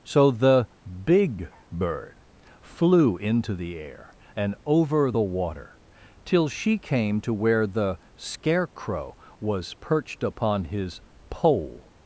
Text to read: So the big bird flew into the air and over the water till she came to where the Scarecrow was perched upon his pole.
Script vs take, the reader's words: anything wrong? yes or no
no